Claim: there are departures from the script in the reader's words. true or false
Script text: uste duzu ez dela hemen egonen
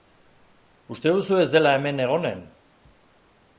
false